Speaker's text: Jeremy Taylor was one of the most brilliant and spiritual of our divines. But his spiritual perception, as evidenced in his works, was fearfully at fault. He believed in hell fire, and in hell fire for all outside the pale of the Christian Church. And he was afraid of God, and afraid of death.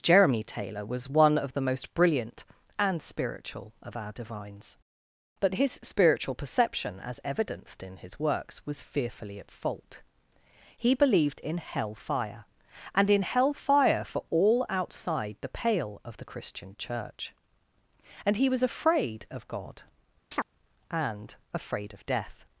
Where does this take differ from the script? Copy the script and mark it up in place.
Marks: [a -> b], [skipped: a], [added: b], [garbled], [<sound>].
Jeremy Taylor was one of the most brilliant and spiritual of our divines. But his spiritual perception, as evidenced in his works, was fearfully at fault. He believed in hell fire, and in hell fire for all outside the pale of the Christian Church. And he was afraid of God, [chirp] and afraid of death.